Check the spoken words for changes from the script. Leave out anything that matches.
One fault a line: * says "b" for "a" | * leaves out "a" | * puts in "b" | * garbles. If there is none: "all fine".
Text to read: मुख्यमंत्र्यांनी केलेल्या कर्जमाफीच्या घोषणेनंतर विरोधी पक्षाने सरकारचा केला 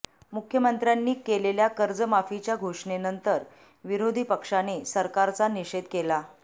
* puts in "निषेध"